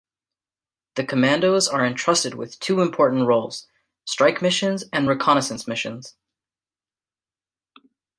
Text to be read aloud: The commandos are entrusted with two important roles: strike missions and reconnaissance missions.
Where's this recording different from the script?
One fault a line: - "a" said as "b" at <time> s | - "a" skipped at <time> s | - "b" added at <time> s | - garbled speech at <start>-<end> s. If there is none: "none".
none